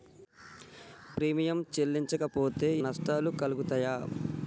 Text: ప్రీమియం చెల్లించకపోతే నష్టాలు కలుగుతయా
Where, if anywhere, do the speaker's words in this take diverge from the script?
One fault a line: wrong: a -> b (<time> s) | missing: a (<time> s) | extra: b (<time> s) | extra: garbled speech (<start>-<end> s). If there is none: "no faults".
no faults